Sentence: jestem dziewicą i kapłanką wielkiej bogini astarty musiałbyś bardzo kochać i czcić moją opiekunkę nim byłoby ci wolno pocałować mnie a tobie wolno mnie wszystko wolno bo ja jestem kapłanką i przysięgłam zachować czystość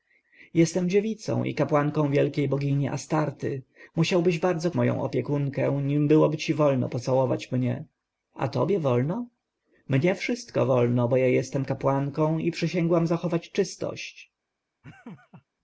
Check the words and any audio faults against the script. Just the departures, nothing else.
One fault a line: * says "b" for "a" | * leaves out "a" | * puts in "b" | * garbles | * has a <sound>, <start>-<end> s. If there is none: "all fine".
* leaves out "kochać i czcić"
* has a laugh, 14.8-15.4 s